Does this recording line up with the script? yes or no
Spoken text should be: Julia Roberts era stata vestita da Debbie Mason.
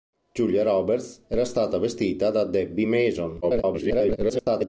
no